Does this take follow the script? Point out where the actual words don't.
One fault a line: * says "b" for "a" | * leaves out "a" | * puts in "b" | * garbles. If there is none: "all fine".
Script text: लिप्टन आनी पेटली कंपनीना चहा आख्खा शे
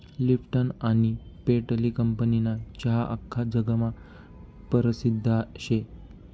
* puts in "जगमा परसिद्ध"